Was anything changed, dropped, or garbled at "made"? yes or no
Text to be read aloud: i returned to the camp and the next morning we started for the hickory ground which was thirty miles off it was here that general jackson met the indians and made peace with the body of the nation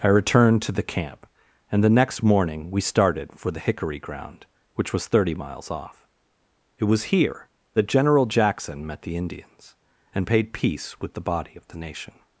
yes